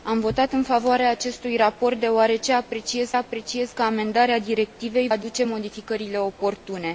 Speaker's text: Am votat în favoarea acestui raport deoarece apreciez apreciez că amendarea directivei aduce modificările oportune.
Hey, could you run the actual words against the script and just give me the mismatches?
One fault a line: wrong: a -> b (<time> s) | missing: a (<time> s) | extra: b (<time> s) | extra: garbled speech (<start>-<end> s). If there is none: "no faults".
no faults